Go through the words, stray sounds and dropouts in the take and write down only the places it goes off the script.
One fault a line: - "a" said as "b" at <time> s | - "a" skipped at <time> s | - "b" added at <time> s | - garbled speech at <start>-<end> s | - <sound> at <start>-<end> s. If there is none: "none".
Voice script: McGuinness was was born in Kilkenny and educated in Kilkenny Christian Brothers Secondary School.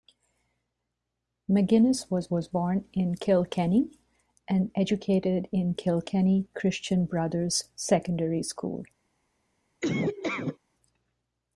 - laugh at 9.8-10.6 s